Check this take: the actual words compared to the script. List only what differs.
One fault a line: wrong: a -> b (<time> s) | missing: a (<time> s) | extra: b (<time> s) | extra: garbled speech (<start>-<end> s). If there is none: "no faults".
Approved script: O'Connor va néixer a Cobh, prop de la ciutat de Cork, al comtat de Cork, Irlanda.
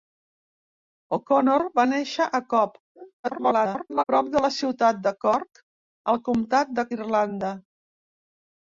extra: garbled speech (3.2-4.0 s)
missing: Cork (6.9 s)